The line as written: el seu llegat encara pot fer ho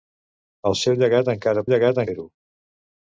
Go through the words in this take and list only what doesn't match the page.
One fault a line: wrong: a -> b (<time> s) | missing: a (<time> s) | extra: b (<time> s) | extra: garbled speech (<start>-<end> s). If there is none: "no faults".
wrong: pot -> llegat (1.7 s)